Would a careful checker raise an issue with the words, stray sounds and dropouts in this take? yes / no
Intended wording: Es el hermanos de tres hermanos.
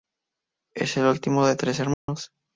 yes